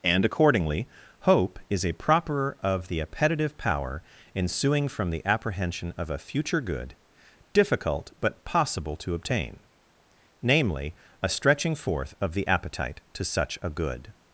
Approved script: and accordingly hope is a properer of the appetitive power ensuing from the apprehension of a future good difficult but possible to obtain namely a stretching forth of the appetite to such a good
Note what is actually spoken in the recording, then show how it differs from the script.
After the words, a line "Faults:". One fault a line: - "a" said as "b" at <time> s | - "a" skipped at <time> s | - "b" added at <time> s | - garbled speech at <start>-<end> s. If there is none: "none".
and accordingly hope is a properer of the appetitive power ensuing from the apprehension of a future good difficult but possible to obtain namely a stretching forth of the appetite to such a good
Faults:
none